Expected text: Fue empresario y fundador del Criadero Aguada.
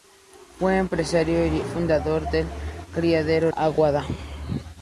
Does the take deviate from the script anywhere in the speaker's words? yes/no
no